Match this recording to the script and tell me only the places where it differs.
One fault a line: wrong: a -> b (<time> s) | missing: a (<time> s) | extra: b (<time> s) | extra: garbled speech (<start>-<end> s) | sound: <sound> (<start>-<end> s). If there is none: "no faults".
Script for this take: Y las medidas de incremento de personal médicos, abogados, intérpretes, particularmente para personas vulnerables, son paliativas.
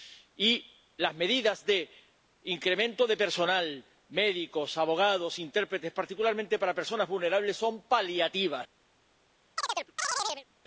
sound: chirp (9.6-10.5 s)